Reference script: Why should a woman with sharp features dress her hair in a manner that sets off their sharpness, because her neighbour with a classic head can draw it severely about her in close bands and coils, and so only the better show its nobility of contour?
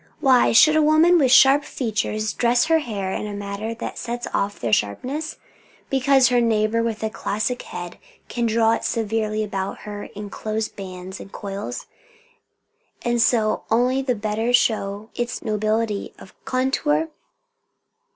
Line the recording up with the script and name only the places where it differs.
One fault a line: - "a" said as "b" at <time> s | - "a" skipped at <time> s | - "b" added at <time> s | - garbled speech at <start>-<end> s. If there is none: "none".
none